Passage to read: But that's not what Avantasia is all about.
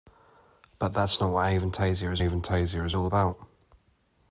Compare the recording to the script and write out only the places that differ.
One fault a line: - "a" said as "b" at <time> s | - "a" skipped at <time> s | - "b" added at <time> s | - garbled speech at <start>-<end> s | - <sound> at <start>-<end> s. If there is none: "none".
- "Avantasia is" added at 2.2 s